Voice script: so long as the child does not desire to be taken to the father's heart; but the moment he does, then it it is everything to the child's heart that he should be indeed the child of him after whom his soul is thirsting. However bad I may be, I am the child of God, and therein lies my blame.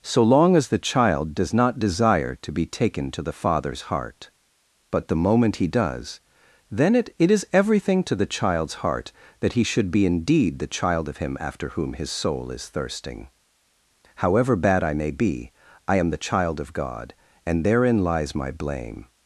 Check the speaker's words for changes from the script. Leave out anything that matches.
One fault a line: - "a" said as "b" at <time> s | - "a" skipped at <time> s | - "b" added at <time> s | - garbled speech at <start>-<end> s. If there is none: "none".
none